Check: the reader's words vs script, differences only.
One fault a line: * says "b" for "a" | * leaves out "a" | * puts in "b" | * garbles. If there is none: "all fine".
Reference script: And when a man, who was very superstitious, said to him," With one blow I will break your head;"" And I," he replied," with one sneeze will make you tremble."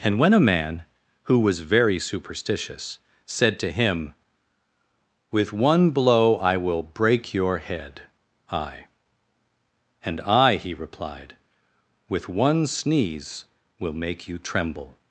* puts in "I"